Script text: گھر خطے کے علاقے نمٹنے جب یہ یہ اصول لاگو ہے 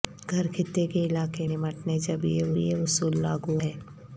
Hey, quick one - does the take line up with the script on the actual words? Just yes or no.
yes